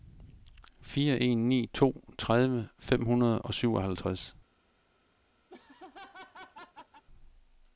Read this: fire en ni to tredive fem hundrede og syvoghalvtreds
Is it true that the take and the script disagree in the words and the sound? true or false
true